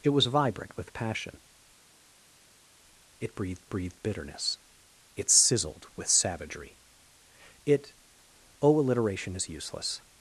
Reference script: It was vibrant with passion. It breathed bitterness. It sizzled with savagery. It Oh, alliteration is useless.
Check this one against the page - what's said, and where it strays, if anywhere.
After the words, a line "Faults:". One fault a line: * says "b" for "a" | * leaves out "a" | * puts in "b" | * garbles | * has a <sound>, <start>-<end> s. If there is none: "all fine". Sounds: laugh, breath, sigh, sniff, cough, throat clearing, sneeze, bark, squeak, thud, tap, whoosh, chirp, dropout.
It was vibrant with passion. It breathed breathed bitterness. It sizzled with savagery. It Oh, alliteration is useless.
Faults:
* puts in "breathed"